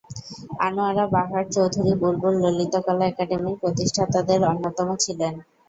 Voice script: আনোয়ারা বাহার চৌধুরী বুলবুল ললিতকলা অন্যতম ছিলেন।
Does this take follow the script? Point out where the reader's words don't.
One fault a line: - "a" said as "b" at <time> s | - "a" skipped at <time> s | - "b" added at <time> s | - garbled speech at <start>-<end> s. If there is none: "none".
- "একাডেমির প্রতিষ্ঠাতাদের" added at 3.1 s